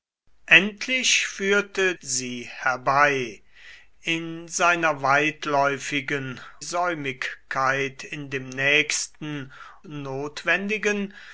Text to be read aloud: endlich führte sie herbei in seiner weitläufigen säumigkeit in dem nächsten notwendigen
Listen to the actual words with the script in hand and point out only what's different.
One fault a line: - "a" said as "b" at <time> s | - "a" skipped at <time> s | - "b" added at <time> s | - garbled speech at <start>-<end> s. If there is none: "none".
none